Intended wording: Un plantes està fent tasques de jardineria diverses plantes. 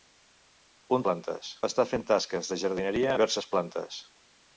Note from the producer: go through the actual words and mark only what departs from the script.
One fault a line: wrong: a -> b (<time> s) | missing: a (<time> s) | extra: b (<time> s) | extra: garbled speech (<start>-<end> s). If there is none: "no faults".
no faults